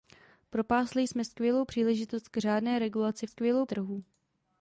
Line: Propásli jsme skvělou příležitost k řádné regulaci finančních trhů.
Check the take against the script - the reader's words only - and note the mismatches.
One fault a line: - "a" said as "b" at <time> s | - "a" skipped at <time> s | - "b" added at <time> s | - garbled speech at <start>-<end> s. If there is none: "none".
- "finančních" said as "skvělou" at 3.2 s